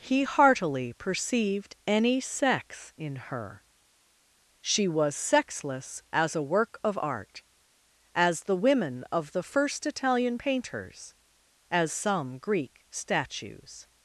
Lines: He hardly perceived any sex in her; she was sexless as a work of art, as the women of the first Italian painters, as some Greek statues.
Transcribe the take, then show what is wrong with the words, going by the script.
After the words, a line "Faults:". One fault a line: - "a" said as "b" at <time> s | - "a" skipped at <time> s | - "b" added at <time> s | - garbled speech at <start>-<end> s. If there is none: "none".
He heartily perceived any sex in her; she was sexless as a work of art, as the women of the first Italian painters, as some Greek statues.
Faults:
- "hardly" said as "heartily" at 0.2 s